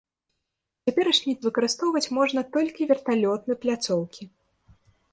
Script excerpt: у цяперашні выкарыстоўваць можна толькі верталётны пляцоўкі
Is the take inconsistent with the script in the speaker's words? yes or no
no